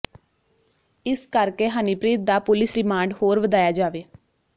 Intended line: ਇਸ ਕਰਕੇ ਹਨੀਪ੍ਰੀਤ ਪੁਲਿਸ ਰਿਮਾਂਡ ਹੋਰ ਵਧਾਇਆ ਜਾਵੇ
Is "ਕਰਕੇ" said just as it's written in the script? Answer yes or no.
yes